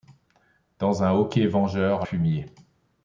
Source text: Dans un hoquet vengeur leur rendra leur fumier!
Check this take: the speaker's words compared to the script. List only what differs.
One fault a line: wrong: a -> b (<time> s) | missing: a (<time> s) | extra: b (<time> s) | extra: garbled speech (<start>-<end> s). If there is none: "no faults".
missing: leur rendra leur (2.1 s)